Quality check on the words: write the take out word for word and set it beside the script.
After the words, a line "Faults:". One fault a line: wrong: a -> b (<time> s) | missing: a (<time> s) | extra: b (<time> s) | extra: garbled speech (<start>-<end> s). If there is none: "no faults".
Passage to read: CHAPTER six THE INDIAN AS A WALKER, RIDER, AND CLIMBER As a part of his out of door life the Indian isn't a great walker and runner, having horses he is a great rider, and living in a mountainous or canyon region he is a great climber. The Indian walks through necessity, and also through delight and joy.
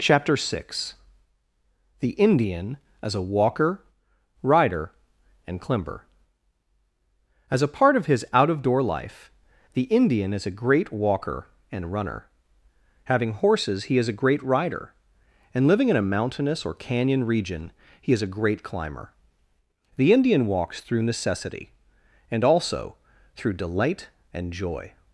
CHAPTER six THE INDIAN AS A WALKER, RIDER, AND CLIMBER As a part of his out of door life the Indian is a great walker and runner, having horses he is a great rider, and living in a mountainous or canyon region he is a great climber. The Indian walks through necessity, and also through delight and joy.
Faults:
wrong: isn't -> is (10.3 s)